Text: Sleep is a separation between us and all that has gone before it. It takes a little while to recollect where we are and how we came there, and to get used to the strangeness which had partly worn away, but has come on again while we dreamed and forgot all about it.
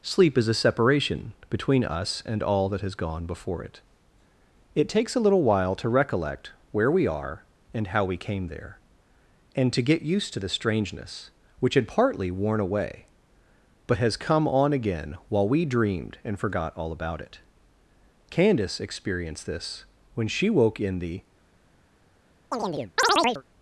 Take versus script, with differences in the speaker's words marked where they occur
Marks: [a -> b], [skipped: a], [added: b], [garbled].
Sleep is a separation between us and all that has gone before it. It takes a little while to recollect where we are and how we came there, and to get used to the strangeness which had partly worn away, but has come on again while we dreamed and forgot all about it. [added: Candace experienced this when she woke in the]